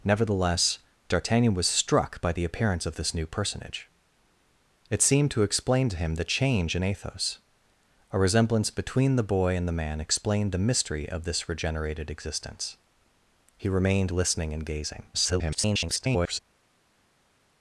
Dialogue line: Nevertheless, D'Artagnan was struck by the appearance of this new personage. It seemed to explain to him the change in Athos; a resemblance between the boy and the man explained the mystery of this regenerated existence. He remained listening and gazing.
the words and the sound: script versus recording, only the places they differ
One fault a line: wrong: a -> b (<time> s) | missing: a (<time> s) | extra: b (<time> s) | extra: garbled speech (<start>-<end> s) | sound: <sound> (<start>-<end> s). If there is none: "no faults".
extra: garbled speech (15.1-16.4 s)